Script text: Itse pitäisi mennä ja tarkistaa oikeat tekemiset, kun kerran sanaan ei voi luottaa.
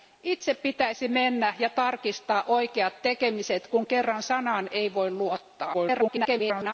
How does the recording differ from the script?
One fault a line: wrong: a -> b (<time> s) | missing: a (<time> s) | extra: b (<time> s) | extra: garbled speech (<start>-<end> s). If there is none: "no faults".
extra: garbled speech (5.7-6.7 s)